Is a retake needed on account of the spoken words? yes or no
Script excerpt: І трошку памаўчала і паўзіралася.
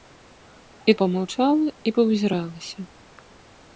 yes